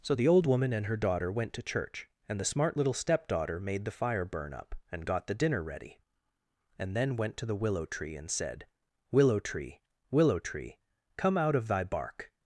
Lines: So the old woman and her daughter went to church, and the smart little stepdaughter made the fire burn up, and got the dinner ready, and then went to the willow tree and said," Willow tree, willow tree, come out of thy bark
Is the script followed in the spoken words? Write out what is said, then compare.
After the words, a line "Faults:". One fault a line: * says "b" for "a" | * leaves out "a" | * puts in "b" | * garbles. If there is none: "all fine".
So the old woman and her daughter went to church, and the smart little stepdaughter made the fire burn up, and got the dinner ready, and then went to the willow tree and said," Willow tree, willow tree, come out of thy bark
Faults:
all fine